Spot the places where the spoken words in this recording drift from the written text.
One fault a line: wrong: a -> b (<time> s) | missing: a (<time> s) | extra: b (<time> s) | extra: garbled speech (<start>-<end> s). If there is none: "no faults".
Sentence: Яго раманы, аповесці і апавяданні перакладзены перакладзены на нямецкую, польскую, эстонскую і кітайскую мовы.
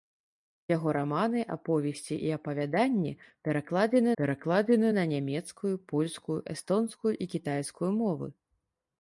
no faults